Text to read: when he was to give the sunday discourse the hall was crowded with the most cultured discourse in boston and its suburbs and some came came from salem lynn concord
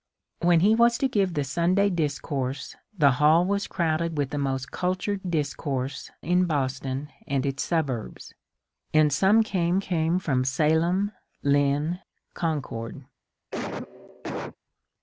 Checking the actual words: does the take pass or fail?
pass